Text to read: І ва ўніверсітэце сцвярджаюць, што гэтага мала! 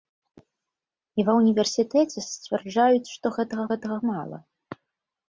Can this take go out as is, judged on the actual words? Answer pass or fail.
fail